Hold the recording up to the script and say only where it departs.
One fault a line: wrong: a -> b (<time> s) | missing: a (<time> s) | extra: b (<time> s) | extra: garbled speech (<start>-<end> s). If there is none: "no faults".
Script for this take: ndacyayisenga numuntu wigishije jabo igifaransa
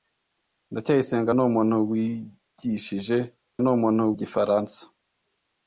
wrong: jabo -> numuntu (3.6 s)